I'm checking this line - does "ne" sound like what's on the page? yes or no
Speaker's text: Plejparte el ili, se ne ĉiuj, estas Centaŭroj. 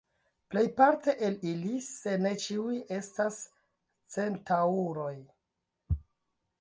yes